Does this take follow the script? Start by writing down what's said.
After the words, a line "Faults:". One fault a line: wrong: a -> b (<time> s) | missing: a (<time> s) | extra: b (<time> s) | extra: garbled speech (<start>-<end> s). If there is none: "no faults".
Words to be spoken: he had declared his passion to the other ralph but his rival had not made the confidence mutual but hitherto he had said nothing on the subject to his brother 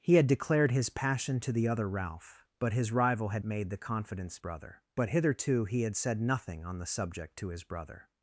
he had declared his passion to the other ralph but his rival had made the confidence brother but hitherto he had said nothing on the subject to his brother
Faults:
missing: not (3.5 s)
wrong: mutual -> brother (4.4 s)